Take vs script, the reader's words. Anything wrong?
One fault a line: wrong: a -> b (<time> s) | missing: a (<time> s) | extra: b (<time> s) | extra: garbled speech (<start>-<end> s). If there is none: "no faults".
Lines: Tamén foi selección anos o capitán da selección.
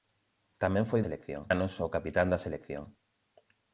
no faults